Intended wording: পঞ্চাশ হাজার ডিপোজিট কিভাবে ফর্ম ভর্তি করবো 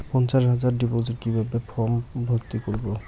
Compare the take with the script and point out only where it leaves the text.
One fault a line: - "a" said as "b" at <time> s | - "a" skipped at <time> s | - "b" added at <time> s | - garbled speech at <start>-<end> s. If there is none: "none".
none